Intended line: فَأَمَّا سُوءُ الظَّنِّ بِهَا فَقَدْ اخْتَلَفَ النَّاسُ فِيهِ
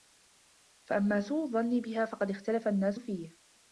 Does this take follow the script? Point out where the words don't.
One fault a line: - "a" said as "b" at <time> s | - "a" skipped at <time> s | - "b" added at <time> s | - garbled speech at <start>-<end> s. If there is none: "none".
none